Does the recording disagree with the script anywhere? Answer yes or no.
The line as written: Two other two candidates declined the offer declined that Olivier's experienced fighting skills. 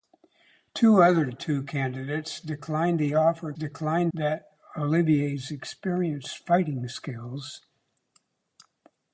no